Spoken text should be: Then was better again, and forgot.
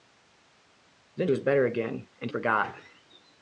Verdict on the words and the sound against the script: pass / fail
pass